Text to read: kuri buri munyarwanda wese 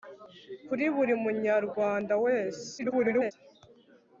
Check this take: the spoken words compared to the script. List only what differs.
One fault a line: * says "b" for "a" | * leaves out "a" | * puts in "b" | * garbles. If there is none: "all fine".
* garbles